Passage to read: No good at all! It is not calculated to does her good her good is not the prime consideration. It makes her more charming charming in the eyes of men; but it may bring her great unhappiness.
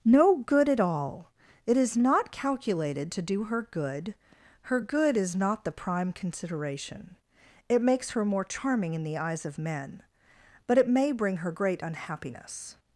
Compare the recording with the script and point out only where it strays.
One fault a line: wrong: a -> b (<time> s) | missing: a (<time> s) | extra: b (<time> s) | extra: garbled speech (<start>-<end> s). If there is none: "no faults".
wrong: does -> do (3.2 s)
missing: charming (8.9 s)